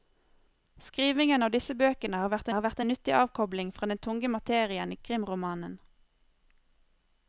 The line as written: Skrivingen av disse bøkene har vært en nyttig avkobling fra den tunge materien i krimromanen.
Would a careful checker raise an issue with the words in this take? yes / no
yes